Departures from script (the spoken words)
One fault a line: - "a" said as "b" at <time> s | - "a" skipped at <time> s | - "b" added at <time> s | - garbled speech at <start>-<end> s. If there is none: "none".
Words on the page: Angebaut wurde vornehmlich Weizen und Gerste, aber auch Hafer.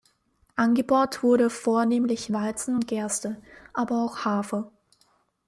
none